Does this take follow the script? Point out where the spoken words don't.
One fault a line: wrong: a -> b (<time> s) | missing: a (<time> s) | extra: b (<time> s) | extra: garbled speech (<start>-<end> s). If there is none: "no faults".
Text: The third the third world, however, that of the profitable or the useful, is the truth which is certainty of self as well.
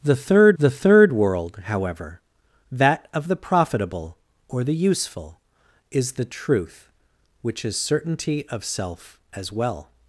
no faults